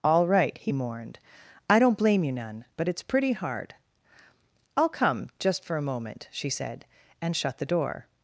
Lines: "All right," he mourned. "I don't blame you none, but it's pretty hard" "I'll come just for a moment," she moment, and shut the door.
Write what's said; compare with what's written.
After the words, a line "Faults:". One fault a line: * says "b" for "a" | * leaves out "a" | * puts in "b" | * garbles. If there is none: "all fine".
"All right," he mourned. "I don't blame you none, but it's pretty hard" "I'll come just for a moment," she said, and shut the door.
Faults:
* says "said" for "moment"